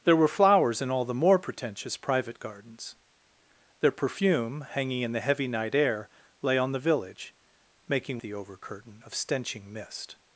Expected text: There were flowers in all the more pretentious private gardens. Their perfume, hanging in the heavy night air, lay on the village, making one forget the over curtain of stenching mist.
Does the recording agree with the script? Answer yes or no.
no